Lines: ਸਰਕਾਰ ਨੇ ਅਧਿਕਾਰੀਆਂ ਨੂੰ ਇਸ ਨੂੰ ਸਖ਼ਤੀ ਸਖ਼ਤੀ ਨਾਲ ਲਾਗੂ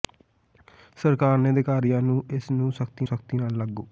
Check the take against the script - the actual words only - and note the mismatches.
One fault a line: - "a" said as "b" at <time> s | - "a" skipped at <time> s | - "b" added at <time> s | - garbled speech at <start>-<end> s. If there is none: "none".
none